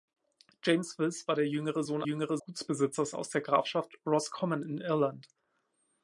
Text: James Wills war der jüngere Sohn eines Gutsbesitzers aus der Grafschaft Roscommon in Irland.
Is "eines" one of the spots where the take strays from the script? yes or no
yes